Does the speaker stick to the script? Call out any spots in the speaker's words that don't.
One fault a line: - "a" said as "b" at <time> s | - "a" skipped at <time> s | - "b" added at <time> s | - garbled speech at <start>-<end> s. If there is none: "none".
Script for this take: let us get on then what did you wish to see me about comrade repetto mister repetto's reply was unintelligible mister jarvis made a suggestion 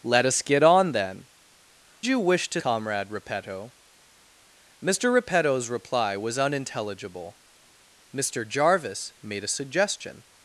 - "what did" skipped at 1.3 s
- "see me about" skipped at 2.6 s